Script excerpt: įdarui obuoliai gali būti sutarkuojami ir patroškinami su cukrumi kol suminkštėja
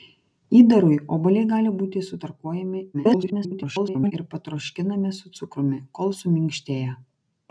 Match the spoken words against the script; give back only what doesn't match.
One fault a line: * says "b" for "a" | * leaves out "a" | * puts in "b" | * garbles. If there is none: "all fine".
* garbles